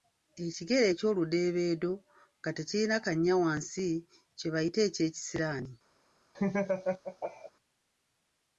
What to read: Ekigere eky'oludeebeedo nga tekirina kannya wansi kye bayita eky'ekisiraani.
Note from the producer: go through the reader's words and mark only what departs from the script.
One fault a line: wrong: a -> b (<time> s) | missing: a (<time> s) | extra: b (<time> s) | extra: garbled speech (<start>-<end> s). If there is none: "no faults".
no faults